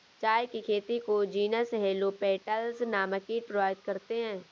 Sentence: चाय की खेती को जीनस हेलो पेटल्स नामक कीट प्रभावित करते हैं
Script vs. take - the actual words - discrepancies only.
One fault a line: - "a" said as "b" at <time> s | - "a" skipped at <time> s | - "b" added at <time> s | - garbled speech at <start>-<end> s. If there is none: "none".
none